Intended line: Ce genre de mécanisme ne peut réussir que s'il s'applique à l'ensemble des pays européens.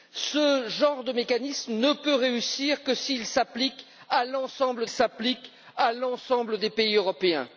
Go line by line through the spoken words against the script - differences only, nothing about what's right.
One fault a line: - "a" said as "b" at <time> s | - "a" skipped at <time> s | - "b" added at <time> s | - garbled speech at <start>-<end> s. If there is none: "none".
- "s'applique à l'ensemble" added at 4.9 s